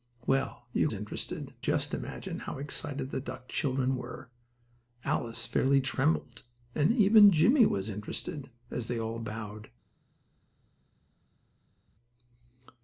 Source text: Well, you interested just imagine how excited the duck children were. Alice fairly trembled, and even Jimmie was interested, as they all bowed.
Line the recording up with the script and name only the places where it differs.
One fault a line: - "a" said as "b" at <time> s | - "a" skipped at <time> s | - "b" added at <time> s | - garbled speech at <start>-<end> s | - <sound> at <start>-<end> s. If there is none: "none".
none